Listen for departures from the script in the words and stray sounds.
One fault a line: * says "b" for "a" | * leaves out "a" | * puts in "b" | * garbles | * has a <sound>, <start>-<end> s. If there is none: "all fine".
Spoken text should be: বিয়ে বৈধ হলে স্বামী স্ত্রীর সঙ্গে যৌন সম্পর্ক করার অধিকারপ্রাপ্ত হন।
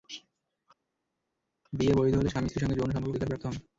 * leaves out "করার"